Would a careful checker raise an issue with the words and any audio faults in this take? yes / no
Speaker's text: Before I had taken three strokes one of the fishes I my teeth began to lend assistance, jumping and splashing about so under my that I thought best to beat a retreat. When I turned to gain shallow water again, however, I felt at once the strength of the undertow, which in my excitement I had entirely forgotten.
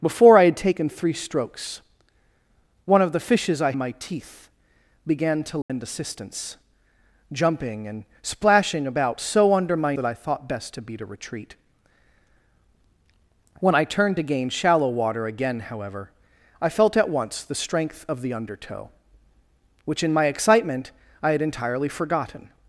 yes